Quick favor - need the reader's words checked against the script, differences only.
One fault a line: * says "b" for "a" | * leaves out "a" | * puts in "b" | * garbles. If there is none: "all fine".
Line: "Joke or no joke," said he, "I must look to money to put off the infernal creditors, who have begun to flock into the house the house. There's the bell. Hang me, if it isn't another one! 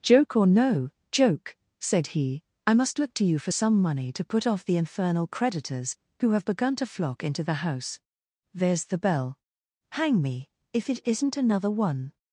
* puts in "you for some"
* leaves out "the house"